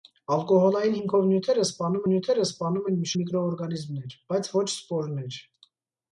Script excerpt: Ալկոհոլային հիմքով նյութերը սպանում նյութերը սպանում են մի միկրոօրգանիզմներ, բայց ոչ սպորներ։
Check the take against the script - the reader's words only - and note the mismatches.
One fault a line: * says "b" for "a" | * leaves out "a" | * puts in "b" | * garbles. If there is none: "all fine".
all fine